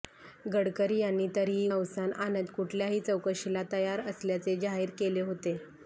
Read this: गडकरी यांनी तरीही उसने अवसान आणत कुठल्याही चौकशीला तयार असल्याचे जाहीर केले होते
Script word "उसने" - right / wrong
wrong